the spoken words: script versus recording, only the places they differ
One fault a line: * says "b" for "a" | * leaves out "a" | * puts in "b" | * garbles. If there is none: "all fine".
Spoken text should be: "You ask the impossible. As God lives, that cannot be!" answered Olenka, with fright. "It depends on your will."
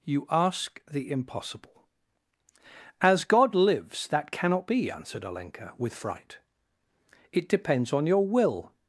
all fine